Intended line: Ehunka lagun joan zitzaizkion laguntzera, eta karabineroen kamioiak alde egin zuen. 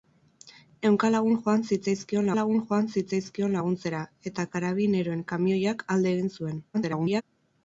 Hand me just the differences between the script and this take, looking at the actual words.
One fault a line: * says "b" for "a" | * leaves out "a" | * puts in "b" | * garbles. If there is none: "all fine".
* puts in "lagun joan zitzaizkion"
* garbles